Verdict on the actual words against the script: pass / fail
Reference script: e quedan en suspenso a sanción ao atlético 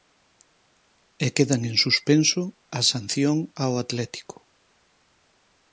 pass